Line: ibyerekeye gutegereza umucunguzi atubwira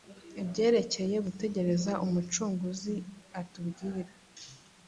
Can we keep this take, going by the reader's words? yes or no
yes